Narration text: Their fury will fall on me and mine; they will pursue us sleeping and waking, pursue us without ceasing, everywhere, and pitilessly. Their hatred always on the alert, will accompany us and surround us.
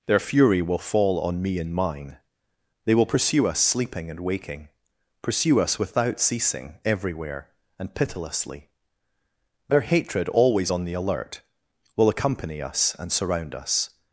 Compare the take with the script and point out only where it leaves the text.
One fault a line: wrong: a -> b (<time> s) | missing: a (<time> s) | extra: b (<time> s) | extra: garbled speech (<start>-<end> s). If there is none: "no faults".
no faults